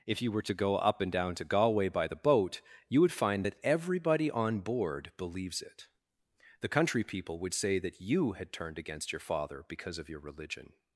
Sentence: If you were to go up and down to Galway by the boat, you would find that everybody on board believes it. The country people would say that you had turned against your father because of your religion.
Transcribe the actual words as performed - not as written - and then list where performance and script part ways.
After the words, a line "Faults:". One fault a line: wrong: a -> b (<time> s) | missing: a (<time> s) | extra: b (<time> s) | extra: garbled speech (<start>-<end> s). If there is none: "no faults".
If you were to go up and down to Galway by the boat, you would find that everybody on board believes it. The country people would say that you had turned against your father because of your religion.
Faults:
no faults